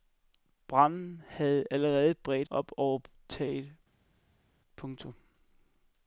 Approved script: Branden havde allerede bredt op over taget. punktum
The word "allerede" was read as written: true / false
true